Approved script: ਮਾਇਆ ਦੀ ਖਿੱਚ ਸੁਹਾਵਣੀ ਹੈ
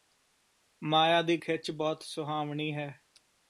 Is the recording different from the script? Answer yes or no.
yes